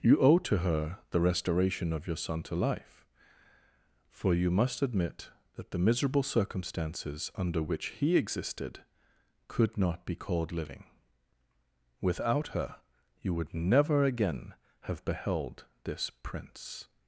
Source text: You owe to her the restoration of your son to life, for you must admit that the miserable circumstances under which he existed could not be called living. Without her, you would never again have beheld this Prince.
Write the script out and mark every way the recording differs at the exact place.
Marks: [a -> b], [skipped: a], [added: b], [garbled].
You owe to her the restoration of your son to life, for you must admit that the miserable circumstances under which he existed could not be called living. Without her, you would never again have beheld this Prince.